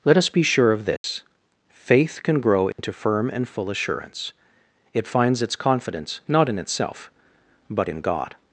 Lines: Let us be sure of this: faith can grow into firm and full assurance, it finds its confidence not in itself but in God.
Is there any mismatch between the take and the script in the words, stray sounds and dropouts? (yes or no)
yes